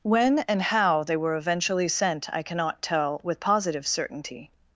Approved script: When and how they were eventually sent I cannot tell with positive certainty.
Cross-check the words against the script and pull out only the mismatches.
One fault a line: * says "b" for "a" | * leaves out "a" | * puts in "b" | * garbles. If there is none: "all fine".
all fine